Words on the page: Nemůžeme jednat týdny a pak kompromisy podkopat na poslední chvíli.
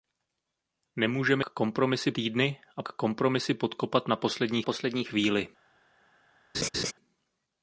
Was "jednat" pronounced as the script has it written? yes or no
no